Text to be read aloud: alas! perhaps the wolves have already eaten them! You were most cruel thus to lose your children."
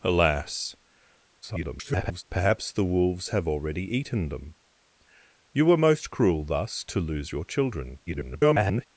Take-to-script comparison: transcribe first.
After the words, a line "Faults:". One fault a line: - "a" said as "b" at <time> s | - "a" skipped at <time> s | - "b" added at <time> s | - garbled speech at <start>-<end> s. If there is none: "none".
alas! [garbled] perhaps the wolves have already eaten them! You were most cruel thus to lose your children." [garbled]
Faults:
- garbled speech at 1.4-2.2 s
- garbled speech at 8.1-8.8 s